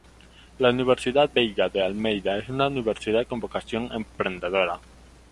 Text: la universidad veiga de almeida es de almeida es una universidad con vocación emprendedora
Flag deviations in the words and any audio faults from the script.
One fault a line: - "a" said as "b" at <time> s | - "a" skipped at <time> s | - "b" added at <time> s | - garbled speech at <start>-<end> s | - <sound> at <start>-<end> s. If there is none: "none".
- "de almeida es" skipped at 2.5 s